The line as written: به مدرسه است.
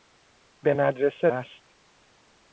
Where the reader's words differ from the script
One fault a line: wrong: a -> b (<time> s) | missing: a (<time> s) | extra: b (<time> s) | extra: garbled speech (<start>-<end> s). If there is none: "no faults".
no faults